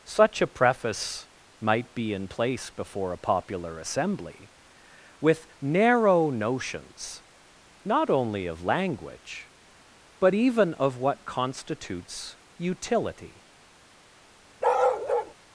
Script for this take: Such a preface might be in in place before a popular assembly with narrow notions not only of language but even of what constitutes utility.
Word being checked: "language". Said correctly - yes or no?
yes